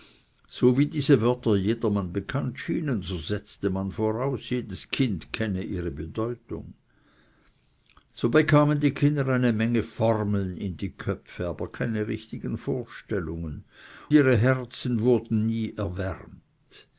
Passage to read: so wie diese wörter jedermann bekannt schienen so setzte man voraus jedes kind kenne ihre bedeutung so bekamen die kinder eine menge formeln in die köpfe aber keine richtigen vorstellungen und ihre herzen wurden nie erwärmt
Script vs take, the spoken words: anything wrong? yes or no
yes